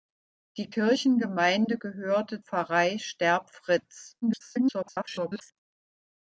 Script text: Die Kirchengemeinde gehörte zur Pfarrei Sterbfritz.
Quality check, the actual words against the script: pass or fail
fail